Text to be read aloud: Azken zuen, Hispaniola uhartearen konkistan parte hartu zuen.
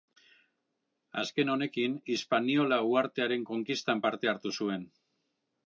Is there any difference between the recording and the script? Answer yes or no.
yes